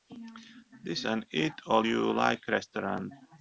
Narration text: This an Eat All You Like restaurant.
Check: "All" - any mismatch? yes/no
no